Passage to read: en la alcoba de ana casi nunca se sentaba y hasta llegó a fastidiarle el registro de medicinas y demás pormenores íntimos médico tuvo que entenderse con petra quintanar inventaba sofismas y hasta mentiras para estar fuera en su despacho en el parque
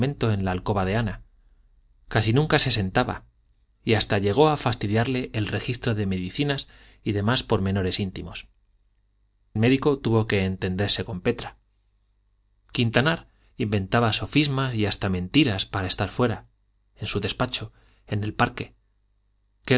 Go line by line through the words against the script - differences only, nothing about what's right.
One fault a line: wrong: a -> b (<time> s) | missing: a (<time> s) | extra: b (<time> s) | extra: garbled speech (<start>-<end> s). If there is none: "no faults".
no faults